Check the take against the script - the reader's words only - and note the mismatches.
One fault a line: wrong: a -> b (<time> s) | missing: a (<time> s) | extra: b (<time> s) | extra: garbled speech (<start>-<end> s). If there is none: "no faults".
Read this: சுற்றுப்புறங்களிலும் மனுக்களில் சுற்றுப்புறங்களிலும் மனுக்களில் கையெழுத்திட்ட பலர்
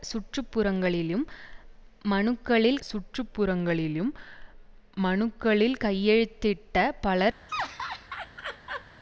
no faults